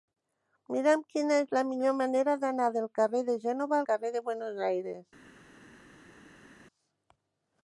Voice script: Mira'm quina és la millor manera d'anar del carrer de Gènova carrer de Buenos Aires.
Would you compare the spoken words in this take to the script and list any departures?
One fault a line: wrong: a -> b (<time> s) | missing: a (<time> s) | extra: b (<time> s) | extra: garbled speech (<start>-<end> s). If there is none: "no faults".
no faults